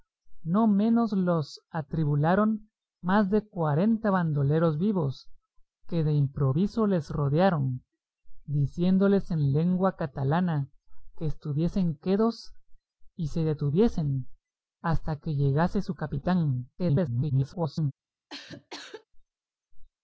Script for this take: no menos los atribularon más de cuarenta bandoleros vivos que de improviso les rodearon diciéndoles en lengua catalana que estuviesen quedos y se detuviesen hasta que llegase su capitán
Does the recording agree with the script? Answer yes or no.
no